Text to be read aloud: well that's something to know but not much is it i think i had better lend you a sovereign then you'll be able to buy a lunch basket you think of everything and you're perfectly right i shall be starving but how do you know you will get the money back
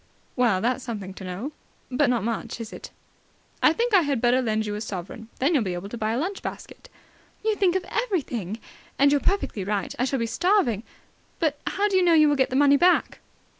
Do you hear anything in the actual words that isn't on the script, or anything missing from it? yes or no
no